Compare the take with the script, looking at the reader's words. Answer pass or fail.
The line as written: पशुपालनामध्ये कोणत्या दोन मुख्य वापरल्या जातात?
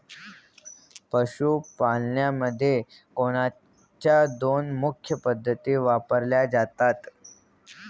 fail